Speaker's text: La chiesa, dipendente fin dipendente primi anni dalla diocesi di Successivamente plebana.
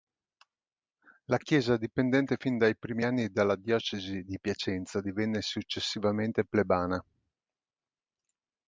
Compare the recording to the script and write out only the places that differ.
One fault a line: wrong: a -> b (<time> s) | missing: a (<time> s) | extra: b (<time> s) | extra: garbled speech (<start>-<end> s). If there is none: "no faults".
wrong: dipendente -> dai (2.6 s)
extra: Piacenza divenne (4.4 s)